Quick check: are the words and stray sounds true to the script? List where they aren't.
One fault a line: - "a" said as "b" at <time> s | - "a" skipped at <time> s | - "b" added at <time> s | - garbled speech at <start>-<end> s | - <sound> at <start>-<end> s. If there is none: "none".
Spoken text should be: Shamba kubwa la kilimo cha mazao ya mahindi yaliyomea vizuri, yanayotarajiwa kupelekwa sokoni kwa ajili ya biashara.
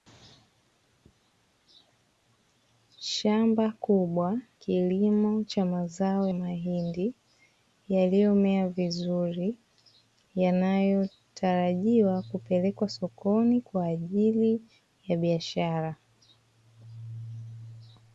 - "la" skipped at 4.4 s
- "ya" skipped at 6.3 s